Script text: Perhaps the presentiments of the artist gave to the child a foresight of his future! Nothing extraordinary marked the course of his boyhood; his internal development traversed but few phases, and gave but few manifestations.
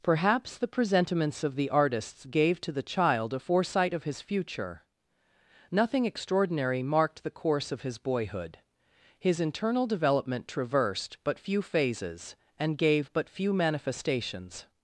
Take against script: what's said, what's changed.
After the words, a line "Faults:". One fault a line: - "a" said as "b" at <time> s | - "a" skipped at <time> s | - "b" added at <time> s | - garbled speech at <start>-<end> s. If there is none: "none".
Perhaps the presentiments of the artists gave to the child a foresight of his future! Nothing extraordinary marked the course of his boyhood; his internal development traversed but few phases, and gave but few manifestations.
Faults:
- "artist" said as "artists" at 1.7 s